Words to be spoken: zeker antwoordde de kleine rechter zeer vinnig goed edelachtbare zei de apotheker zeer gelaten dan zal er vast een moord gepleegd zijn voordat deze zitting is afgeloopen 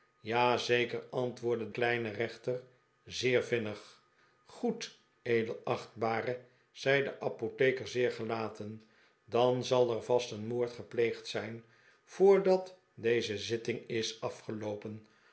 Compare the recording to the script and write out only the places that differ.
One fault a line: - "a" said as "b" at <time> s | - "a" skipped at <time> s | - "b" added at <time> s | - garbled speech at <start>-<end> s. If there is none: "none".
- "de" skipped at 1.7 s